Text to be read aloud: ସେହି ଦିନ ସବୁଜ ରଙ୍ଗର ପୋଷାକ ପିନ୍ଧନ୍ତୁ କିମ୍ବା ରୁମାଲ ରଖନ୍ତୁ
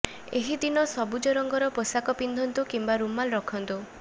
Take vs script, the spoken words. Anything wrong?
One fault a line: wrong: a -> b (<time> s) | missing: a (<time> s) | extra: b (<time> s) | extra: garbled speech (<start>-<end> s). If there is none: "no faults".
wrong: ସେହି -> ଏହି (0.4 s)